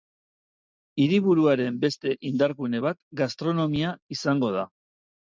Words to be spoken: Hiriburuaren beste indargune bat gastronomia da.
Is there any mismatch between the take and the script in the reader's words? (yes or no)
yes